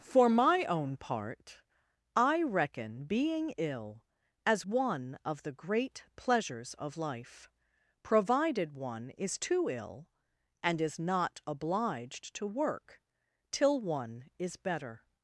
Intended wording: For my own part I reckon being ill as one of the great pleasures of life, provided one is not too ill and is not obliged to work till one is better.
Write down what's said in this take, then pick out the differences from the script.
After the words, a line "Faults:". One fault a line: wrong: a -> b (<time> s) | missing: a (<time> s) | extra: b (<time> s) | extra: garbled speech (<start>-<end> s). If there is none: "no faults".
For my own part I reckon being ill as one of the great pleasures of life, provided one is too ill and is not obliged to work till one is better.
Faults:
missing: not (9.4 s)